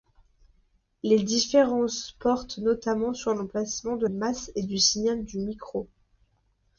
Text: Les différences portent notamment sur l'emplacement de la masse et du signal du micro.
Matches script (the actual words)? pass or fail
fail